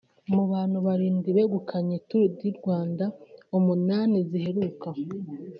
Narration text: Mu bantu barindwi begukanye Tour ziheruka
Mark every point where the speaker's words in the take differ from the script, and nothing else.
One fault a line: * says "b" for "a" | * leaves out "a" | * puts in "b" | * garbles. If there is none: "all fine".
* puts in "du Rwanda umunani"